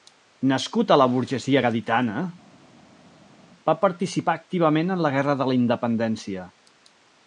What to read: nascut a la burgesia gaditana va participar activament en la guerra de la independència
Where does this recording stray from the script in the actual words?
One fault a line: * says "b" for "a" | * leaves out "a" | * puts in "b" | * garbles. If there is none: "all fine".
all fine